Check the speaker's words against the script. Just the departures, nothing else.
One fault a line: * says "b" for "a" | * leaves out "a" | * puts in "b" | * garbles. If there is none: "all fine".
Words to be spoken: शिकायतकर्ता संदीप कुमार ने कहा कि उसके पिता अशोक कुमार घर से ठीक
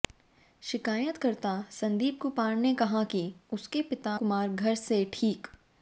* leaves out "अशोक"